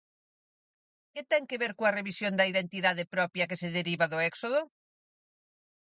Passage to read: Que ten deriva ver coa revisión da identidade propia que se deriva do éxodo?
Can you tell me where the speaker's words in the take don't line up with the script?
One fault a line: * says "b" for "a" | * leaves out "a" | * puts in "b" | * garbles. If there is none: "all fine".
* says "que" for "deriva"